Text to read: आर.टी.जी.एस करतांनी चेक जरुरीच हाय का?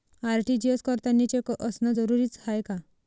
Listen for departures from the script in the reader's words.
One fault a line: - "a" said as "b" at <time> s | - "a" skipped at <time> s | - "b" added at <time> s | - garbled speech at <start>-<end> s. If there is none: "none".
- "असनं" added at 1.5 s